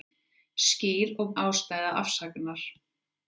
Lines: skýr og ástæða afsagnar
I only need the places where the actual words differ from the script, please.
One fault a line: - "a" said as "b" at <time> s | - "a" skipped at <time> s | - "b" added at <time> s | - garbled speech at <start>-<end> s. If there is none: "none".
none